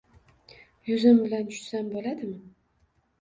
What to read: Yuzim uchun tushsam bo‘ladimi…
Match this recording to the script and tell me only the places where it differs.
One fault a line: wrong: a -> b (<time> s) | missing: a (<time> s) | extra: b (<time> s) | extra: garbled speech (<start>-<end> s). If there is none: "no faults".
wrong: uchun -> bilan (1.2 s)